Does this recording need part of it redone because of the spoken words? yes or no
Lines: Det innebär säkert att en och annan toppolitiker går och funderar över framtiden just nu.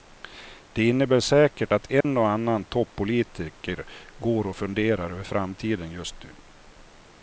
no